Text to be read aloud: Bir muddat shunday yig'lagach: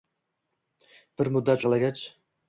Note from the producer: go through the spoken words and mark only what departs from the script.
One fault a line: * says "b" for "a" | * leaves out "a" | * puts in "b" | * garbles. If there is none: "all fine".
* leaves out "shunday"